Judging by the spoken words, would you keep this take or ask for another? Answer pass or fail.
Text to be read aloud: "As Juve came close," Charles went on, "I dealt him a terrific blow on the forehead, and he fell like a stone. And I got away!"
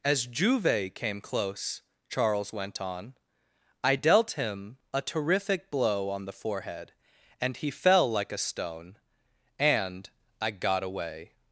pass